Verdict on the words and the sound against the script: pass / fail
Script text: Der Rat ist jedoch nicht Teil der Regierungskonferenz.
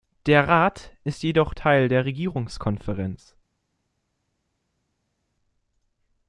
fail